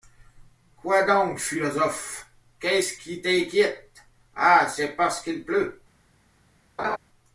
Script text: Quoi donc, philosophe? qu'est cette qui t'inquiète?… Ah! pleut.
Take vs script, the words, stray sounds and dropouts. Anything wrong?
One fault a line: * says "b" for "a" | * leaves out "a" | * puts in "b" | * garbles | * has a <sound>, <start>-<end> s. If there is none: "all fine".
* says "ce" for "cette"
* puts in "c'est parce qu'il"
* has a laugh, 6.8-7.0 s